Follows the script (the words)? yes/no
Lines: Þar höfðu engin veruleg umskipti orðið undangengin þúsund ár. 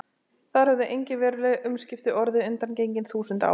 yes